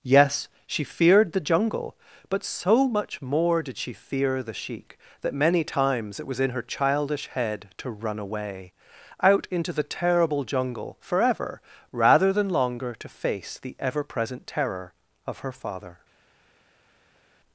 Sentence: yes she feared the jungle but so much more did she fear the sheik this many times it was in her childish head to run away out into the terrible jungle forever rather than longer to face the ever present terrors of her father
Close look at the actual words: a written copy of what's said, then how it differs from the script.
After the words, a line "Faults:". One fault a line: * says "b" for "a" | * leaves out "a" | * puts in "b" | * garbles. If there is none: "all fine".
yes she feared the jungle but so much more did she fear the sheik that many times it was in her childish head to run away out into the terrible jungle forever rather than longer to face the ever present terror of her father
Faults:
* says "that" for "this"
* says "terror" for "terrors"